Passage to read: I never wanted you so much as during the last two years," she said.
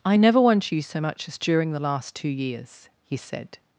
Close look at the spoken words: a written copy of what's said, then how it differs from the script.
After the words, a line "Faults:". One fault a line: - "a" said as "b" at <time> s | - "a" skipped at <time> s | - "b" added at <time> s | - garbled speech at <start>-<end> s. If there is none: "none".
I never want you so much as during the last two years," he said.
Faults:
- "wanted" said as "want" at 0.4 s
- "she" said as "he" at 3.1 s